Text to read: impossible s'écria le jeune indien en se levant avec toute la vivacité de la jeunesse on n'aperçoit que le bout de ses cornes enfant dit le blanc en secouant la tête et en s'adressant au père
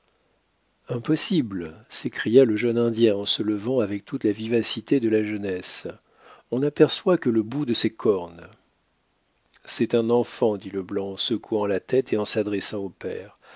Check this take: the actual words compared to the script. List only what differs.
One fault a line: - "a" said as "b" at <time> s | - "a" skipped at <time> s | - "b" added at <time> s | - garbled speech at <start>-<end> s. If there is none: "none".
- "c'est un" added at 9.6 s